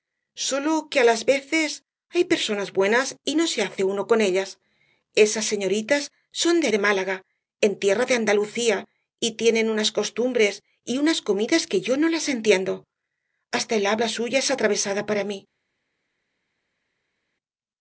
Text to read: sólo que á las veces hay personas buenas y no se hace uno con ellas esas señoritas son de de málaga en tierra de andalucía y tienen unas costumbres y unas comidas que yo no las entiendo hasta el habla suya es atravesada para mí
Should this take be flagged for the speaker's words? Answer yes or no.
no